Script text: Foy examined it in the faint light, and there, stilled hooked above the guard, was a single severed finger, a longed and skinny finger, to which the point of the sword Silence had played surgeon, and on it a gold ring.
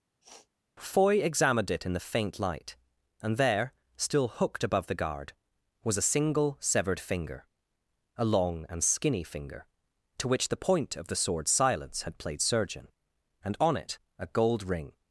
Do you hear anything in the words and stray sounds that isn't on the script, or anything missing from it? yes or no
yes